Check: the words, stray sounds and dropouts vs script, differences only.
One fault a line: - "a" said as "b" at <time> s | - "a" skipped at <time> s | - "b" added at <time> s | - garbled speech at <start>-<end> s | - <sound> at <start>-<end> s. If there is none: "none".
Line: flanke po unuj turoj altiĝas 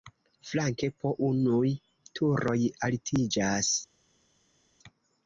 none